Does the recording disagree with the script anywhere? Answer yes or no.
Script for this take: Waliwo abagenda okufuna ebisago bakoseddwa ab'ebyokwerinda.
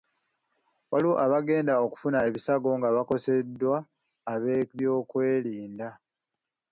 yes